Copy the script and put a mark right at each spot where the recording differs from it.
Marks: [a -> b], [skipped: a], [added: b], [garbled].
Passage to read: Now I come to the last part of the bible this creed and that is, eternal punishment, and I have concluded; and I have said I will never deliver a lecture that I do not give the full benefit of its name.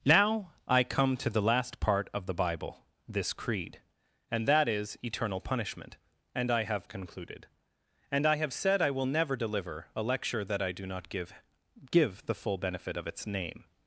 Now I come to the last part of the bible this creed and that is, eternal punishment, and I have concluded; and I have said I will never deliver a lecture that I do not give [added: give] the full benefit of its name.